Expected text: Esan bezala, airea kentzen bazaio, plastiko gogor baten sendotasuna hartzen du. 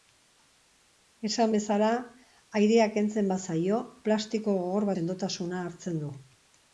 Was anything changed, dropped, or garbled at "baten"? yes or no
yes